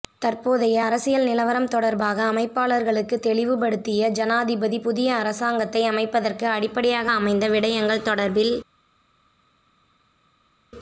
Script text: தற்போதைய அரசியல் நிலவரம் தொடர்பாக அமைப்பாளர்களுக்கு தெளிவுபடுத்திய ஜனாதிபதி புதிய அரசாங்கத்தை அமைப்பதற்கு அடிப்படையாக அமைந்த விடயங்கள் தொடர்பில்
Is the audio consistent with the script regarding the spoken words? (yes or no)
yes